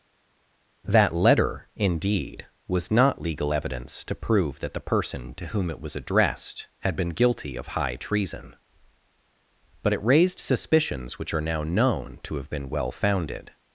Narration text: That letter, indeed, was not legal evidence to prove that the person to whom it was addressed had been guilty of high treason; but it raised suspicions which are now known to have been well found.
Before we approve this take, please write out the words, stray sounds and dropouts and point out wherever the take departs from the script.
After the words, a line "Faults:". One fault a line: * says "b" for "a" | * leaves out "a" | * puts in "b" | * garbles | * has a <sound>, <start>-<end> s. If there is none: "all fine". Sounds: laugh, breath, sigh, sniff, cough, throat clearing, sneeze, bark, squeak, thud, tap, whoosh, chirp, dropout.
That letter, indeed, was not legal evidence to prove that the person to whom it was addressed had been guilty of high treason; but it raised suspicions which are now known to have been well founded.
Faults:
* says "founded" for "found"